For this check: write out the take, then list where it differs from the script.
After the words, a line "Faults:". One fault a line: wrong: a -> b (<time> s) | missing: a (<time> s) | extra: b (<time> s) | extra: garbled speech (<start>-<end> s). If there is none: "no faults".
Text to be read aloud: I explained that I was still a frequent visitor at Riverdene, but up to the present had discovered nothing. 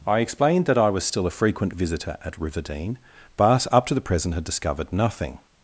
I explained that I was still a frequent visitor at Riverdene, but up to the present had discovered nothing.
Faults:
no faults